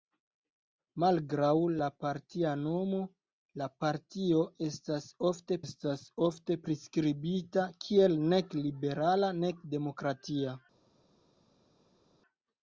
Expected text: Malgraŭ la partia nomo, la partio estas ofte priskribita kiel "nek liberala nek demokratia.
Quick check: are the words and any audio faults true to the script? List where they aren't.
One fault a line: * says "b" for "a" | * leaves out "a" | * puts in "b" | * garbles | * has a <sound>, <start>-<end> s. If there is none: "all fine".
* puts in "estas ofte"